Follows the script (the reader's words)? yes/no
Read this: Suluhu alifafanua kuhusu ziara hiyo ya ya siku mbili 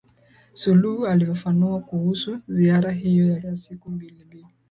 yes